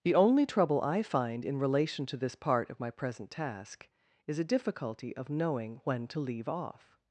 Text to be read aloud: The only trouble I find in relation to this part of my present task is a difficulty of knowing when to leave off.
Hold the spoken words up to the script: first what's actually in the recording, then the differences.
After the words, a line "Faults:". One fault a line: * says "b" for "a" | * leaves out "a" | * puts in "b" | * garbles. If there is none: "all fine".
The only trouble I find in relation to this part of my present task is a difficulty of knowing when to leave off.
Faults:
all fine